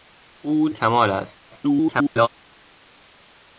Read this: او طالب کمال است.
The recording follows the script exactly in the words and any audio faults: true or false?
false